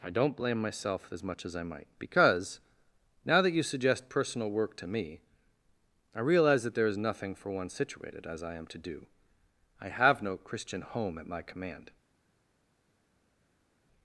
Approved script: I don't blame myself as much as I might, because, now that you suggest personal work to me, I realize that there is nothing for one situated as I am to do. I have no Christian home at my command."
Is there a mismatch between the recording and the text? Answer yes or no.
no